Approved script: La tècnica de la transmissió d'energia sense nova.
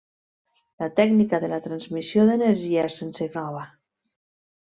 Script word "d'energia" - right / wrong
right